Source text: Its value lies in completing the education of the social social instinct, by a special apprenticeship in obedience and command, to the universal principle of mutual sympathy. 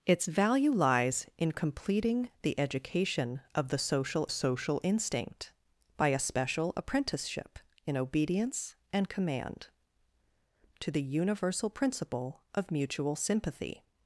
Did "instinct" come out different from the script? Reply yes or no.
no